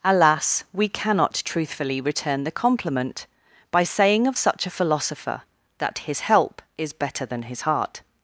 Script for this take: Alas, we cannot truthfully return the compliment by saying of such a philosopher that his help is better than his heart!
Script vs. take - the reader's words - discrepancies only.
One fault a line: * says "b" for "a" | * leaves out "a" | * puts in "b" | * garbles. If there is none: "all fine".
all fine